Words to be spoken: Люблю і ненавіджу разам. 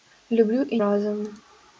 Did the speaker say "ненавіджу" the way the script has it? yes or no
no